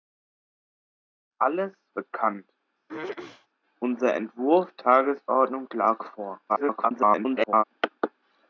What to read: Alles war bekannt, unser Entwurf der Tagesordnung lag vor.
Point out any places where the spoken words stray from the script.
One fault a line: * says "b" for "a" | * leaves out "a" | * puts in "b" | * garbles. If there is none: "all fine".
* leaves out "war"
* leaves out "der"
* garbles